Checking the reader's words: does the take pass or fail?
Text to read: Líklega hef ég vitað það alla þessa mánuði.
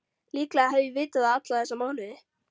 pass